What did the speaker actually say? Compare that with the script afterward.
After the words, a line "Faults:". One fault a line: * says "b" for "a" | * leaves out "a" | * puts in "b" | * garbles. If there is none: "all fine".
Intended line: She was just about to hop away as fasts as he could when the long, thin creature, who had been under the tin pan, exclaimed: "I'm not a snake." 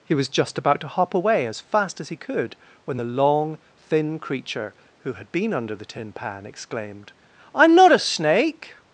He was just about to hop away as fast as he could when the long, thin creature, who had been under the tin pan, exclaimed: "I'm not a snake."
Faults:
* says "He" for "She"
* says "fast" for "fasts"